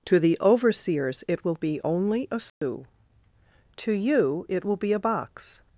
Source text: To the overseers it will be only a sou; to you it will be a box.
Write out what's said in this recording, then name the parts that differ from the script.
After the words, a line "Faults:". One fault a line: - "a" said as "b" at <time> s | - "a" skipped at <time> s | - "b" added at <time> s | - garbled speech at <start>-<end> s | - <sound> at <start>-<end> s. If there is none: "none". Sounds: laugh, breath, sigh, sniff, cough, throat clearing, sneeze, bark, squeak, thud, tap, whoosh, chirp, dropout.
To the overseers it will be only a sou; to you it will be a box.
Faults:
- dropout at 2.5-2.6 s